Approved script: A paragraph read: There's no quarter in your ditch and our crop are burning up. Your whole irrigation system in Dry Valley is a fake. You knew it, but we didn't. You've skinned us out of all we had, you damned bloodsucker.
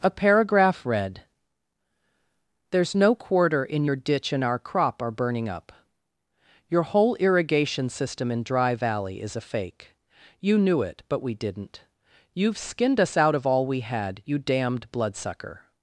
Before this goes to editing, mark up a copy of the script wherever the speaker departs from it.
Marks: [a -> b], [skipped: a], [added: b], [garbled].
A paragraph read: There's no quarter in your ditch and our crop are burning up. Your whole irrigation system in Dry Valley is a fake. You knew it, but we didn't. You've skinned us out of all we had, you damned bloodsucker.